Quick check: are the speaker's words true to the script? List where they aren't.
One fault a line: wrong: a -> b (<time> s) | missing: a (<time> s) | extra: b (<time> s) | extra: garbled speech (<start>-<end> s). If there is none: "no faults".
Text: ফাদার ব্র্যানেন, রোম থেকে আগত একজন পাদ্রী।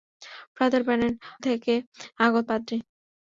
missing: রোম (1.1 s)
missing: একজন (2.5 s)